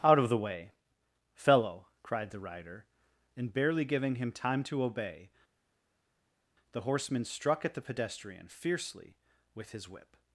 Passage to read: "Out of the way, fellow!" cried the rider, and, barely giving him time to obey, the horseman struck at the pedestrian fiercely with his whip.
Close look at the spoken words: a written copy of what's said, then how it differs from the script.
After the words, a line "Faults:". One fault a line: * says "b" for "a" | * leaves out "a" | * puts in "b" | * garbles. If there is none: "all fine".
"Out of the way, fellow!" cried the rider, and, barely giving him time to obey, the horseman struck at the pedestrian fiercely with his whip.
Faults:
all fine